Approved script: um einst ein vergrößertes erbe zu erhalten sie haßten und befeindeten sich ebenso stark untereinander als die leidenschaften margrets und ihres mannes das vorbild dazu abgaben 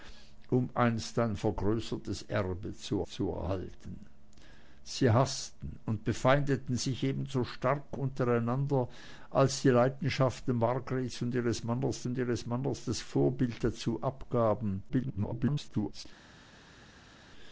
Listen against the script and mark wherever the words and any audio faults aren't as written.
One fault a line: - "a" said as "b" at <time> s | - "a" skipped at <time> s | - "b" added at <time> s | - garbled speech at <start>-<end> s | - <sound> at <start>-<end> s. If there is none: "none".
- "zu" added at 3.0 s
- "und ihres mannes" added at 12.1 s
- garbled speech at 14.9-16.0 s